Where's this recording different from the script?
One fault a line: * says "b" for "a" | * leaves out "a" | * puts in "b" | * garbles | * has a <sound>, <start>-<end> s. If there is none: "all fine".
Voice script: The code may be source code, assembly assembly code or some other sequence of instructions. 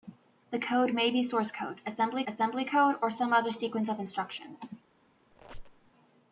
* has a squeak, 5.3-5.9 s